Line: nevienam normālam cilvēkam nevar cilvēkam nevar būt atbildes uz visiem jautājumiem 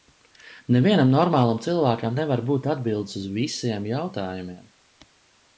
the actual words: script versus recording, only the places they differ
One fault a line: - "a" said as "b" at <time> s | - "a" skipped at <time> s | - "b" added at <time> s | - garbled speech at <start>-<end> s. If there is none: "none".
- "cilvēkam nevar" skipped at 2.4 s